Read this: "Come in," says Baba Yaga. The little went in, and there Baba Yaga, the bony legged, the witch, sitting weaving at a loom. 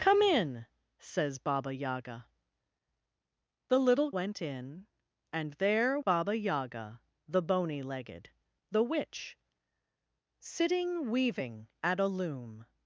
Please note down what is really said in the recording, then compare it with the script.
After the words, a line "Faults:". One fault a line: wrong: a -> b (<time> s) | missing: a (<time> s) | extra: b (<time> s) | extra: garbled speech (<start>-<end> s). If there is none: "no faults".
"Come in," says Baba Yaga. The little went in, and there Baba Yaga, the bony legged, the witch, sitting weaving at a loom.
Faults:
no faults